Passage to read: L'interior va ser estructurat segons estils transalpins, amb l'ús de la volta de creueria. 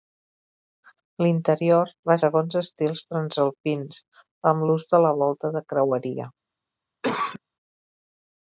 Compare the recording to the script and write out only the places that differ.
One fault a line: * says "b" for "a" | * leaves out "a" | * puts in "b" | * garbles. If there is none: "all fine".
* leaves out "ser estructurat"